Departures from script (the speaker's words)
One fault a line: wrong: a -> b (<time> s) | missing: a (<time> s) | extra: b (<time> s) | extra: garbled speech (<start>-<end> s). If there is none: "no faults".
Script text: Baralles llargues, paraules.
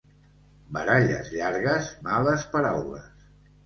extra: males (2.1 s)